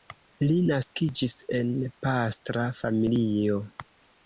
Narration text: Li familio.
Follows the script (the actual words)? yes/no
no